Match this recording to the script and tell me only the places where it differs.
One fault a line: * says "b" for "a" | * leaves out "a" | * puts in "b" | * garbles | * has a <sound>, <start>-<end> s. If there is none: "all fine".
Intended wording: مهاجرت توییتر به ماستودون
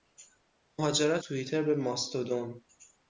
all fine